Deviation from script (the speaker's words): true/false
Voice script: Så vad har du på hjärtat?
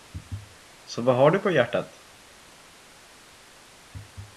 false